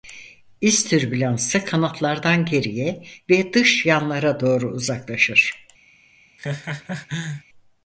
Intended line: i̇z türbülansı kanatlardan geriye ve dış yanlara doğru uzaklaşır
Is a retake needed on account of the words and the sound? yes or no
yes